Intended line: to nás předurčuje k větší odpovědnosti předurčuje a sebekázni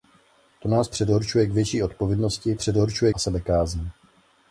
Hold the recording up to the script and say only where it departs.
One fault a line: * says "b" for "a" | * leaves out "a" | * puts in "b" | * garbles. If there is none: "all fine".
all fine